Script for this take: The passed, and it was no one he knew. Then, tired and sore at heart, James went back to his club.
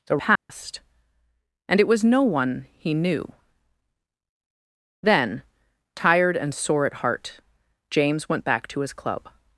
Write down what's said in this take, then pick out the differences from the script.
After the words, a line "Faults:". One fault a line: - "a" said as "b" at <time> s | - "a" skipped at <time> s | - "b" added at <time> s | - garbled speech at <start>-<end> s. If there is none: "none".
The passed, and it was no one he knew. Then, tired and sore at heart, James went back to his club.
Faults:
none